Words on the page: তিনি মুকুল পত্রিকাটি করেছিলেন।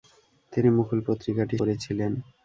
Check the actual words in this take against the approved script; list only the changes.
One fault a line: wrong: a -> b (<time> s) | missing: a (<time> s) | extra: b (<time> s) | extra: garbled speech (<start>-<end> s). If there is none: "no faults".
no faults